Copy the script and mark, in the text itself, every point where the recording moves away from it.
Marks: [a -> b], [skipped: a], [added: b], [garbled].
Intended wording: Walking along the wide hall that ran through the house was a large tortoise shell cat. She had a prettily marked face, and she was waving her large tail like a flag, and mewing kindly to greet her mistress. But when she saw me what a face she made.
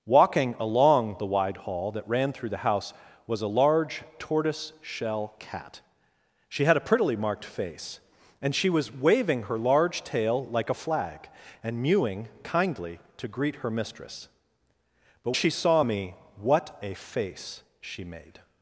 Walking along the wide hall that ran through the house was a large tortoise shell cat. She had a prettily marked face, and she was waving her large tail like a flag, and mewing kindly to greet her mistress. But [skipped: when] she saw me what a face she made.